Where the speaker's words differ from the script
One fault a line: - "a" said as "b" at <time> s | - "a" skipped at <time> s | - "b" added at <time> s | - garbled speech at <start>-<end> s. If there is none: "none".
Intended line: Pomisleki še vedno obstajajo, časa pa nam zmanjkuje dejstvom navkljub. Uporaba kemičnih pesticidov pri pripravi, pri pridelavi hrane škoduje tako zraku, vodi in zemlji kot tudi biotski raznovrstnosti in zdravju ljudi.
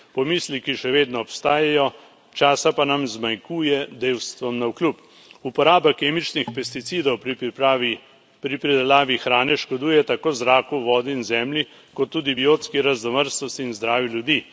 none